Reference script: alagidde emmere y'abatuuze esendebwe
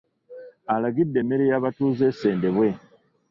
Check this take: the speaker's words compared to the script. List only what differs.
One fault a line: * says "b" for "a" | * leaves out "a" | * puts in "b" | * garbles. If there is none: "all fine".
all fine